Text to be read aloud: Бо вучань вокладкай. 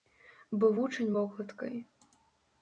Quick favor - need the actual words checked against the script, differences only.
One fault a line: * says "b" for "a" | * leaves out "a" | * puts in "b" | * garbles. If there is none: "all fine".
all fine